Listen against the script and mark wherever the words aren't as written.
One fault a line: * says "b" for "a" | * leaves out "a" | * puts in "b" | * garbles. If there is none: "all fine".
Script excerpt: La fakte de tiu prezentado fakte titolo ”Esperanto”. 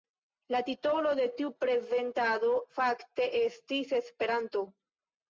* says "titolo" for "fakte"
* says "estis" for "titolo"